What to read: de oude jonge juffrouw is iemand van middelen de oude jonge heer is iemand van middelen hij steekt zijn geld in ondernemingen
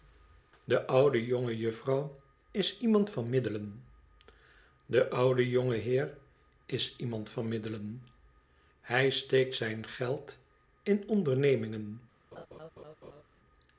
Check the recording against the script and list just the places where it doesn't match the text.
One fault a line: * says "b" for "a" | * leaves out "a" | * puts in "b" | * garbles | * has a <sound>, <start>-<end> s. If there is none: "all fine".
* has a laugh, 12.3-13.2 s